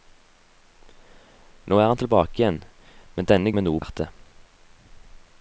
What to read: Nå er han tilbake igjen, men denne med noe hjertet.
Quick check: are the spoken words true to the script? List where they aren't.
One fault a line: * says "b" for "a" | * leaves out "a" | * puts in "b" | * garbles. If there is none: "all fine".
all fine